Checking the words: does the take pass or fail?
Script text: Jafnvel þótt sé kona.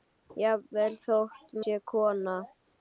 pass